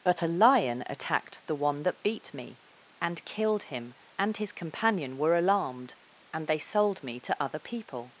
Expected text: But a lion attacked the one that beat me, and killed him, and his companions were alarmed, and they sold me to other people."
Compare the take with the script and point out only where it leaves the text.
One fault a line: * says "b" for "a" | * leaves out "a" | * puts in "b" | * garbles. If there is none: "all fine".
* says "companion" for "companions"